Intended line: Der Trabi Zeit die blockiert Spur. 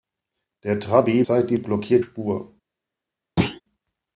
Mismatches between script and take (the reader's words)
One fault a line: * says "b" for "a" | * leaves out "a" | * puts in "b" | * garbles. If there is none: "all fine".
all fine